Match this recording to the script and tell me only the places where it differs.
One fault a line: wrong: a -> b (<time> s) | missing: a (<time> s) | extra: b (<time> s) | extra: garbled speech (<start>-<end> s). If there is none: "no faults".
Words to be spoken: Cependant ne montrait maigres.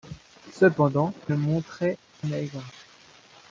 no faults